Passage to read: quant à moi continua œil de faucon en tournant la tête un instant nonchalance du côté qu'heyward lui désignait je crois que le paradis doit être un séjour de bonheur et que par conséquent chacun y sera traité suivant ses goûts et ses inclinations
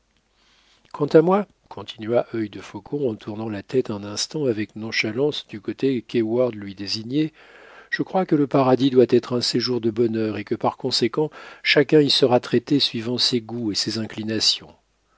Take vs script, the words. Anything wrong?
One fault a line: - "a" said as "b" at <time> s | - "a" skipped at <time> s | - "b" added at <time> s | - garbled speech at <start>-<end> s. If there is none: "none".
- "avec" added at 4.5 s